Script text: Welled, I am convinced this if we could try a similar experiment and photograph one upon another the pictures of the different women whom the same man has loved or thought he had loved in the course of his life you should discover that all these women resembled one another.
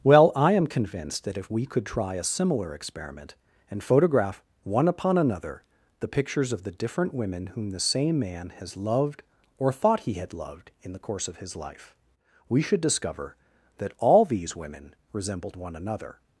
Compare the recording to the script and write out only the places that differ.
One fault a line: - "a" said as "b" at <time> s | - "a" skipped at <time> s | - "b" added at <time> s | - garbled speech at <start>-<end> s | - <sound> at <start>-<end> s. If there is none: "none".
- "Welled" said as "Well" at 0.0 s
- "this" said as "that" at 1.2 s
- "you" said as "we" at 12.5 s